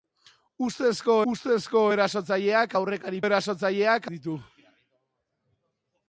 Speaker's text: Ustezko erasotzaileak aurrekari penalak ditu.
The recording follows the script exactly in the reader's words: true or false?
false